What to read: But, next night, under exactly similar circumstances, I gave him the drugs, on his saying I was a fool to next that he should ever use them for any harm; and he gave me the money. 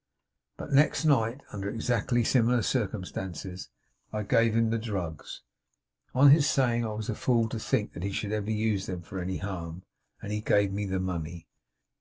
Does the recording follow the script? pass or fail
fail